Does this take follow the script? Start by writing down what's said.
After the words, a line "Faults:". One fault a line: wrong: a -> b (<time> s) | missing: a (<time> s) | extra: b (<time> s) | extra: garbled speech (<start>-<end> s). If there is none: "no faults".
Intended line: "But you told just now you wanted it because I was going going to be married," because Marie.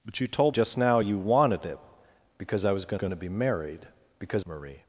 "But you told just now you wanted it because I was going going to be married," because Marie.
Faults:
no faults